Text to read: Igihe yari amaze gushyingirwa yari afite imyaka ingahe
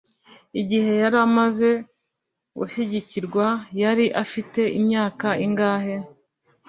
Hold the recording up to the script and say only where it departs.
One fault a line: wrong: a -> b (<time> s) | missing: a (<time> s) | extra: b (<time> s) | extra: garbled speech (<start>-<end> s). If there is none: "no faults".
no faults